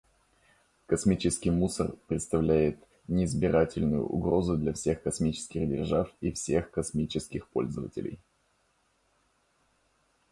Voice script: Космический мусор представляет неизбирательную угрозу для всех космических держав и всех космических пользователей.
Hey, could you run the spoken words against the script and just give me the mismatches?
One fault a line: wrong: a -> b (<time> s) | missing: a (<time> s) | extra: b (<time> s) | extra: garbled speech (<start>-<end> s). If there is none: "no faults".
no faults